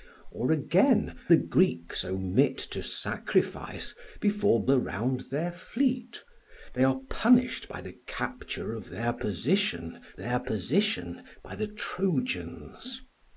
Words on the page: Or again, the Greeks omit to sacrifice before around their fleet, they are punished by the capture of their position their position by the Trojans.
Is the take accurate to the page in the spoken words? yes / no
yes